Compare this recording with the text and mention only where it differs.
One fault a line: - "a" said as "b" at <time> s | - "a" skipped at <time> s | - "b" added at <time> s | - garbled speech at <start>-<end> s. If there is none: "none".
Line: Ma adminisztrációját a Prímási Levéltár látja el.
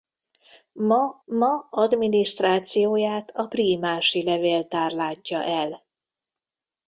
- "ma" added at 1.2 s